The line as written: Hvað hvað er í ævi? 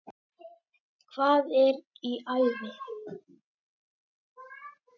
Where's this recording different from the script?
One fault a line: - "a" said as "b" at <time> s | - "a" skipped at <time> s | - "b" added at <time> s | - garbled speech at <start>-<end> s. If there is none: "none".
- "hvað" skipped at 1.5 s